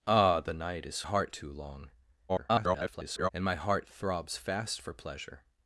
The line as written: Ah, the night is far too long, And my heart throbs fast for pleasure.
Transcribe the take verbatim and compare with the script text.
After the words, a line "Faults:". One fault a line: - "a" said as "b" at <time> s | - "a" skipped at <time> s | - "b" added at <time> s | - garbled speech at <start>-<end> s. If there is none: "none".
Ah, the night is heart too long, [garbled] And my heart throbs fast for pleasure.
Faults:
- "far" said as "heart" at 1.0 s
- garbled speech at 2.3-3.3 s